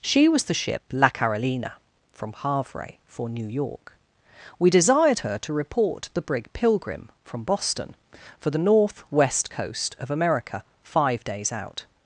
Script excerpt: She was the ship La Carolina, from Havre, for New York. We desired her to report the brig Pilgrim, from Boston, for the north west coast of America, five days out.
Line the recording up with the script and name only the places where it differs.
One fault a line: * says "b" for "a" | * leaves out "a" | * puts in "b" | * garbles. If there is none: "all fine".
all fine